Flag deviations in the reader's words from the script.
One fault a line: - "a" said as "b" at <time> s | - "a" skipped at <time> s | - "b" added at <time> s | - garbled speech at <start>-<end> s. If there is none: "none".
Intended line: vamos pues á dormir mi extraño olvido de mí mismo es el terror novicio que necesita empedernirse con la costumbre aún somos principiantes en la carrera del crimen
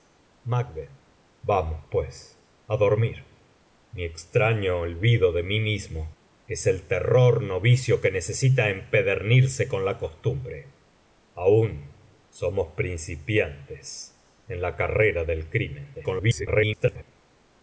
- garbled speech at 15.9-17.0 s